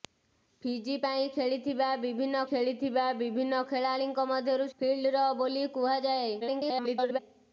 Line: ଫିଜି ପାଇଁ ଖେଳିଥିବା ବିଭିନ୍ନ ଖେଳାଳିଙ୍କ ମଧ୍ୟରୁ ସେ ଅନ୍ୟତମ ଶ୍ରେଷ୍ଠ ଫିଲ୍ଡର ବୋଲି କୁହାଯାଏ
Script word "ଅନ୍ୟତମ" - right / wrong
wrong